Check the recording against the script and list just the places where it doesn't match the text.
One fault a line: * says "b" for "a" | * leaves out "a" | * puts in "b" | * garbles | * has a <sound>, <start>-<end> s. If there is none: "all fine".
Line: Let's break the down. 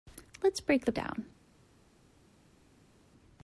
all fine